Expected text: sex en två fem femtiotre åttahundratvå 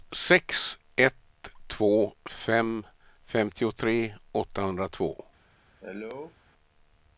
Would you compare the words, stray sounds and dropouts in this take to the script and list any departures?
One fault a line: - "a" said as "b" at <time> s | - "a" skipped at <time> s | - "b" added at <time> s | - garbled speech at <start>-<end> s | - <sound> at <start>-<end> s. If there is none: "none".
- "en" said as "ett" at 0.9 s
- cough at 5.8-6.4 s